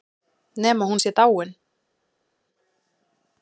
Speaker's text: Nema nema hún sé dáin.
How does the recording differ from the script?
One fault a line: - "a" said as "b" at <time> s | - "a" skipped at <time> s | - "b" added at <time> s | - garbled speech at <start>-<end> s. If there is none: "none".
- "nema" skipped at 0.8 s